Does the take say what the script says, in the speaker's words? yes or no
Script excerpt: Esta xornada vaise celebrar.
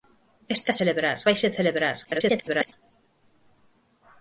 no